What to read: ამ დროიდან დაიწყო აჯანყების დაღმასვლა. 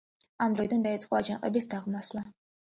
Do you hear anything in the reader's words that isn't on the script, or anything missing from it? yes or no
no